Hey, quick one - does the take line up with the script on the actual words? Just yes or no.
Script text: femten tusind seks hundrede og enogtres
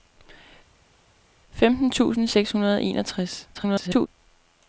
no